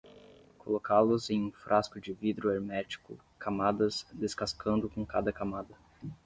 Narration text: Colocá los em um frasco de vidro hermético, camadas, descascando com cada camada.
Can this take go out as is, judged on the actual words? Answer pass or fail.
pass